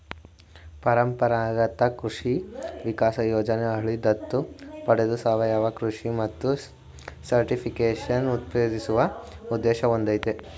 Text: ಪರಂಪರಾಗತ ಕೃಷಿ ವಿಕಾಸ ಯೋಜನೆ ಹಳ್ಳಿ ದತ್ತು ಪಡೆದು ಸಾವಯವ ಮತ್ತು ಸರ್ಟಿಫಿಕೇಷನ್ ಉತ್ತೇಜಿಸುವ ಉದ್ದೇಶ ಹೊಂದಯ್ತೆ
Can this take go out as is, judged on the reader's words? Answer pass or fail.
fail